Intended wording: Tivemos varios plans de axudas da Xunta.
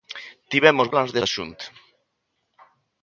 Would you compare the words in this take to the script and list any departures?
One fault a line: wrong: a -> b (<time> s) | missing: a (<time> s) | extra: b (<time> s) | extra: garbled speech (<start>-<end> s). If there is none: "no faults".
missing: varios (0.9 s)
missing: axudas (1.2 s)